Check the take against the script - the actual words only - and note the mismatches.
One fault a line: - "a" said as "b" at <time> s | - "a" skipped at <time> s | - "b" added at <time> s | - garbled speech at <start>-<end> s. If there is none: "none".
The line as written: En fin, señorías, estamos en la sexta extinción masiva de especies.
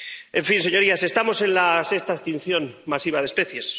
none